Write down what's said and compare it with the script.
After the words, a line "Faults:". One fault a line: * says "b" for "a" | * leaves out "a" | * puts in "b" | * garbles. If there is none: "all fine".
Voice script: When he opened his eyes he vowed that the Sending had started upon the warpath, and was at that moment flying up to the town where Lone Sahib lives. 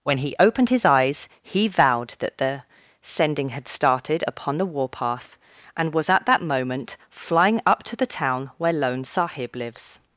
When he opened his eyes he vowed that the Sending had started upon the warpath, and was at that moment flying up to the town where Lone Sahib lives.
Faults:
all fine